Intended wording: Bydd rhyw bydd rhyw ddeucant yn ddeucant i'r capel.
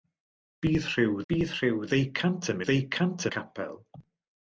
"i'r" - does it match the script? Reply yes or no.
yes